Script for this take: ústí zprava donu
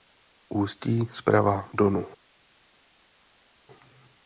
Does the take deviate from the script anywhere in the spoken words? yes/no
no